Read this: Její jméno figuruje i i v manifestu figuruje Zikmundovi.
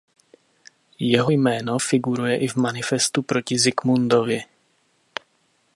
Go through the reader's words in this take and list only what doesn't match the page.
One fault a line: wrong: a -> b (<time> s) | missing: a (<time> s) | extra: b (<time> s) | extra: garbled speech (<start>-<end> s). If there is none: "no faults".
wrong: Její -> Jeho (1.0 s)
missing: i (2.5 s)
wrong: figuruje -> proti (3.2 s)